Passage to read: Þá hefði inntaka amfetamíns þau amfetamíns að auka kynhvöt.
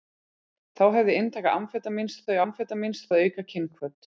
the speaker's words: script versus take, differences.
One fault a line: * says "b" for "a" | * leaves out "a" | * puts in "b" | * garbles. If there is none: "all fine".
all fine